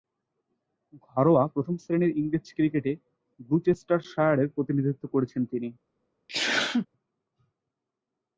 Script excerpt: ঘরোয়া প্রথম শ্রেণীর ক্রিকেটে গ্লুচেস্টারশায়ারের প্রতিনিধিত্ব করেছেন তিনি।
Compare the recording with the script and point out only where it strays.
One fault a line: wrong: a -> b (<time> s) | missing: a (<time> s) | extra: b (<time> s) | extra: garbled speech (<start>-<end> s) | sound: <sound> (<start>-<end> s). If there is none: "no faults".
extra: ইংরেজ (2.2 s)
sound: sneeze (6.3-6.9 s)